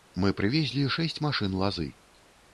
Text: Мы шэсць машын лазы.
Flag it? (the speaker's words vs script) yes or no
yes